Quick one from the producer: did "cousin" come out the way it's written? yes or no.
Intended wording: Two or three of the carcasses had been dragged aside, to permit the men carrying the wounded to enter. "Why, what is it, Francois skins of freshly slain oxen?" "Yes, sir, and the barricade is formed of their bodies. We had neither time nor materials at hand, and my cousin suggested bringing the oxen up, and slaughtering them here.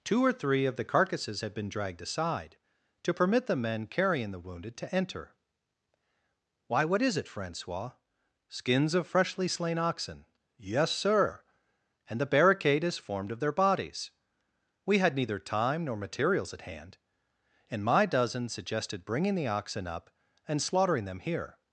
no